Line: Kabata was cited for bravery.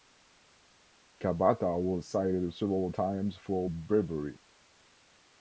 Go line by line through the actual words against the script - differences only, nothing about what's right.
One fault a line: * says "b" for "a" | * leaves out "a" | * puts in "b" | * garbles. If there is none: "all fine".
* puts in "several times"